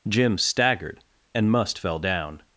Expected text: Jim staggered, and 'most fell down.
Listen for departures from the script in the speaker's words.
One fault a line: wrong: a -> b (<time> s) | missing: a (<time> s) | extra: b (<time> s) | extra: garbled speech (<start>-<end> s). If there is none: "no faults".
wrong: most -> must (1.5 s)